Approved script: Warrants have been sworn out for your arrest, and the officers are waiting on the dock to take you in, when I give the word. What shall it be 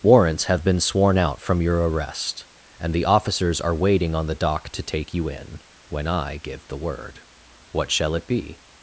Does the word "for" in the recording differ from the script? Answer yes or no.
yes